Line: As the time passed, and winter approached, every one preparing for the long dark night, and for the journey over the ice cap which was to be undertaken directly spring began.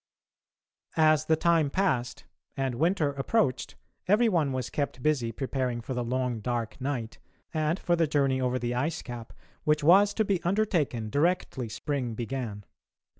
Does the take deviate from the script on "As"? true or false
false